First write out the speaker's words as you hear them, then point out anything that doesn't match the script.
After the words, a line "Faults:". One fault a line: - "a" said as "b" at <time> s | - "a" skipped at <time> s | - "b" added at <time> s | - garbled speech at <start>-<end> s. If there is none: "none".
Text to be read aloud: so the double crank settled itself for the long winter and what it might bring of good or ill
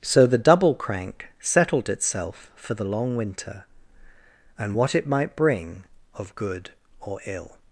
so the double crank settled itself for the long winter and what it might bring of good or ill
Faults:
none